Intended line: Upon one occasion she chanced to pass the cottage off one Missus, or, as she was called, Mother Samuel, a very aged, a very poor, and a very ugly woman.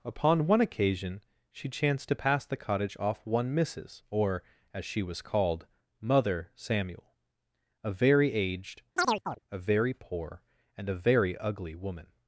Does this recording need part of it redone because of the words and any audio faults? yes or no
yes